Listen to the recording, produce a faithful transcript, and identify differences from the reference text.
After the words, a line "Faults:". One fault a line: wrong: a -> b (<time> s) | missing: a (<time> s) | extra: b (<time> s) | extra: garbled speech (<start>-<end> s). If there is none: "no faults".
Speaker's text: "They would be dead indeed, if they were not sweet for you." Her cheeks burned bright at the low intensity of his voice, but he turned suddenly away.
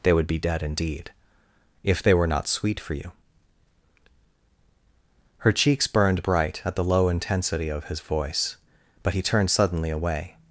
"They would be dead indeed, if they were not sweet for you." Her cheeks burned bright at the low intensity of his voice, but he turned suddenly away.
Faults:
no faults